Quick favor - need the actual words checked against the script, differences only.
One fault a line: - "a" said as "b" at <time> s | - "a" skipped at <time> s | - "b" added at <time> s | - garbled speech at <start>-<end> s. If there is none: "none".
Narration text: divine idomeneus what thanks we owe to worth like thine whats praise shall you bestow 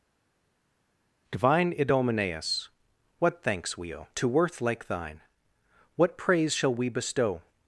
- "whats" said as "what" at 6.0 s
- "you" said as "we" at 6.7 s